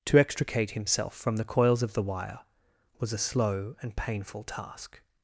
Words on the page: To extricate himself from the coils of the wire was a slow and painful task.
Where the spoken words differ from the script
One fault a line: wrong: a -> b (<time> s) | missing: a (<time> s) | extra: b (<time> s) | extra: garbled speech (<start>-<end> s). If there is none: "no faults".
no faults